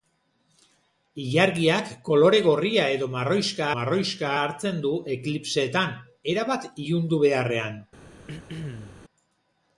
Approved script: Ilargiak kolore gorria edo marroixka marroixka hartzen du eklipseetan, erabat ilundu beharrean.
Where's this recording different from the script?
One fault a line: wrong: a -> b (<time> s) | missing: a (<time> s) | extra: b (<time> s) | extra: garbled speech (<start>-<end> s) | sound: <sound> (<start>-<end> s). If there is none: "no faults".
sound: throat clearing (8.3-9.0 s)